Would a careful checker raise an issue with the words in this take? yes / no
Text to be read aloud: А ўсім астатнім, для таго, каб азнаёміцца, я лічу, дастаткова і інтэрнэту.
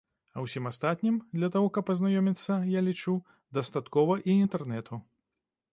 no